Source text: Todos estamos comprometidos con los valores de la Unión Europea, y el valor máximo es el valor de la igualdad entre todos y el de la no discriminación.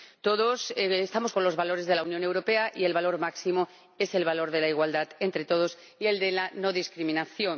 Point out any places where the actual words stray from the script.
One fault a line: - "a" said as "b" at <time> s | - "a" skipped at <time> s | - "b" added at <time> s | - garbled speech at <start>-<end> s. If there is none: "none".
- "comprometidos" skipped at 1.3 s